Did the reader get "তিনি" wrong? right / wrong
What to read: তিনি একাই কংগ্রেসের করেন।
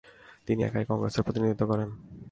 right